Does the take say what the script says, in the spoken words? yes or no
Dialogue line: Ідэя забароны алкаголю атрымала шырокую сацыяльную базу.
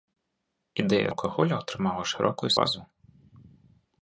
no